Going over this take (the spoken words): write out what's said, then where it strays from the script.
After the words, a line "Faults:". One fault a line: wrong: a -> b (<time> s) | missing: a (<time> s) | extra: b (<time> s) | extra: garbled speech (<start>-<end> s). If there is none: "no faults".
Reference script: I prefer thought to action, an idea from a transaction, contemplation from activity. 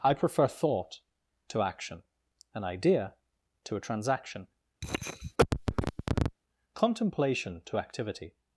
I prefer thought to action, an idea to a transaction, contemplation to activity.
Faults:
wrong: from -> to (3.6 s)
wrong: from -> to (7.7 s)